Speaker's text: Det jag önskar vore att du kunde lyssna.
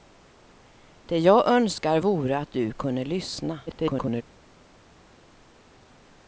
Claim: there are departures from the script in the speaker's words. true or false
true